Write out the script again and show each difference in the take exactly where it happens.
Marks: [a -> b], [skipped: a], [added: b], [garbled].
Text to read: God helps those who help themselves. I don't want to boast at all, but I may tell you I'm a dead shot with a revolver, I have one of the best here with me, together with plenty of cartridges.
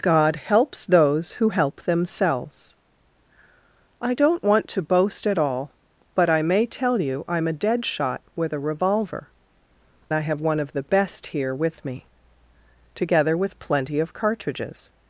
God helps those who help themselves. I don't want to boast at all, but I may tell you I'm a dead shot with a revolver, I have one of the best here with me, together with plenty of cartridges.